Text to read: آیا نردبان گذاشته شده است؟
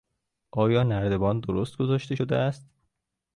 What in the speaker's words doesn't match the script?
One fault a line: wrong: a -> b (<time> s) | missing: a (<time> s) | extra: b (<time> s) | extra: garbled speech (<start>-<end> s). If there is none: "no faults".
extra: درست (1.4 s)